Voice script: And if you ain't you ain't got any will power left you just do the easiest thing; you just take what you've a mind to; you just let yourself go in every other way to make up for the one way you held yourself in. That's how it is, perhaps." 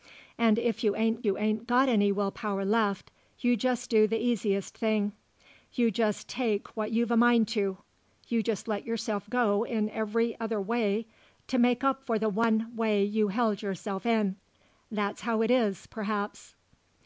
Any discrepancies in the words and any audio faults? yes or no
no